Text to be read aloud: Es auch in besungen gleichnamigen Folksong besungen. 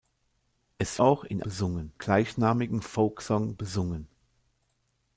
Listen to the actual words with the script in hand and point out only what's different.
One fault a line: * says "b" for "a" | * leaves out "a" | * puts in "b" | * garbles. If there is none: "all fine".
all fine